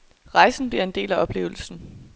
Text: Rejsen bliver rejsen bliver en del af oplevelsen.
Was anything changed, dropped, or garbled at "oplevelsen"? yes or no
no